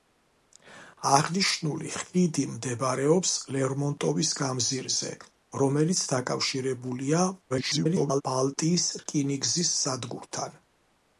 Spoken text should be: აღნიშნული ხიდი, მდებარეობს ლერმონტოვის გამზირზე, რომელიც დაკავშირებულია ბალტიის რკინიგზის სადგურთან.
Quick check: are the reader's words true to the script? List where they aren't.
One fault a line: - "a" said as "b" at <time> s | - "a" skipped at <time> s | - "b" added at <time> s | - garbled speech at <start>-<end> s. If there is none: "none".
- garbled speech at 7.5-8.2 s